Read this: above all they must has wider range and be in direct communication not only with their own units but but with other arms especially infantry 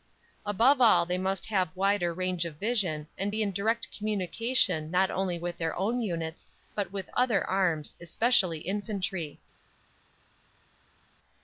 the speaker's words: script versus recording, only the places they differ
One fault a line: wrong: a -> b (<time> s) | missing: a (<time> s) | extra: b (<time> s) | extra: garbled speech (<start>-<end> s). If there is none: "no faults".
wrong: has -> have (1.4 s)
extra: of vision (2.4 s)
missing: but (6.9 s)